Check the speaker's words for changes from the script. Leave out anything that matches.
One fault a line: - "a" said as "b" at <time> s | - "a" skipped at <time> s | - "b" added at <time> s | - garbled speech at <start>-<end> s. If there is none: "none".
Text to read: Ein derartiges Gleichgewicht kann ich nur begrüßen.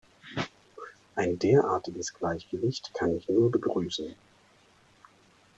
none